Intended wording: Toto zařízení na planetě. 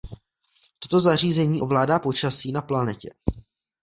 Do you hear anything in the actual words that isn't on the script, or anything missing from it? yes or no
yes